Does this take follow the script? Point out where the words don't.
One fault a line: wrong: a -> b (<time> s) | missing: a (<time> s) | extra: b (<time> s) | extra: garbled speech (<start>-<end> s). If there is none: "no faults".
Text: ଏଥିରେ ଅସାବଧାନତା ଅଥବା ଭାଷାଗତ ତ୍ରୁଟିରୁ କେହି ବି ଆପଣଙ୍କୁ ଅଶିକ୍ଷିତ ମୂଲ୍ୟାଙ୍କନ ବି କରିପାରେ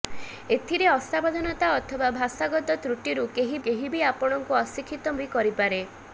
extra: କେହି (3.7 s)
missing: ମୂଲ୍ୟାଙ୍କନ (5.2 s)